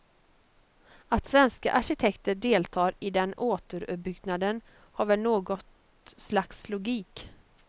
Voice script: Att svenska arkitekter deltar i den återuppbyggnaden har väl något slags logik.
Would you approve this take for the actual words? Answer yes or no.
yes